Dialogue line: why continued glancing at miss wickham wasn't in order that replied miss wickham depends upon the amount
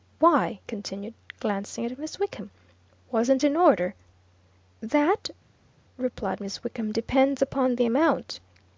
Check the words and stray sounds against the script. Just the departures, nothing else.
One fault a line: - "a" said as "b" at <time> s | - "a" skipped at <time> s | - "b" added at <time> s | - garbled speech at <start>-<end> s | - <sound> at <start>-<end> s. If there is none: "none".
none